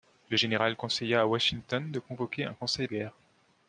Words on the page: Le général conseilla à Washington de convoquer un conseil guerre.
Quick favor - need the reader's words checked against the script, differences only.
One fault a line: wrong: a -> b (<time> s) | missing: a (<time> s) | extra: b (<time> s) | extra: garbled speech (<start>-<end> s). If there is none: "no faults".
no faults